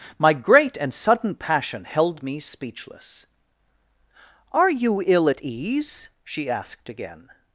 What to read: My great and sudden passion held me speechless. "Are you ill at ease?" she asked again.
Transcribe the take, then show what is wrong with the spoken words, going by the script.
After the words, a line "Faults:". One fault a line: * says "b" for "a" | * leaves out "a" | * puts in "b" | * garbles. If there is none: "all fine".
My great and sudden passion held me speechless. "Are you ill at ease?" she asked again.
Faults:
all fine